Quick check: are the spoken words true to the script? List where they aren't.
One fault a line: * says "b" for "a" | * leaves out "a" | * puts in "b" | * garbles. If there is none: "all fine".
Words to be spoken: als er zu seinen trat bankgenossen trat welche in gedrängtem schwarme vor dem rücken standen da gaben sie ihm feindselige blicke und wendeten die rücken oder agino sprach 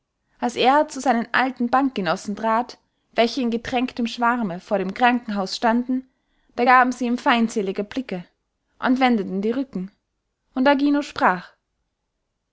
* says "alten" for "trat"
* says "krankenhaus" for "rücken"
* says "und" for "oder"